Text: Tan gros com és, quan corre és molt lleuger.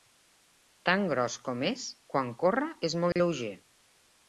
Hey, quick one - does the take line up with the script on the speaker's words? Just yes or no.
yes